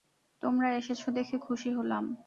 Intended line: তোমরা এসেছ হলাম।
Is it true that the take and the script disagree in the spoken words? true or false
true